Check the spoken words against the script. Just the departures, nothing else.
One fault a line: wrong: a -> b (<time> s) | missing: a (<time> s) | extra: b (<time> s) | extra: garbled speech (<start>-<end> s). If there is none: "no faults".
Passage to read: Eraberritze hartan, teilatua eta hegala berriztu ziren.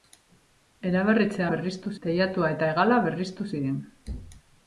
wrong: hartan -> berriztu (1.5 s)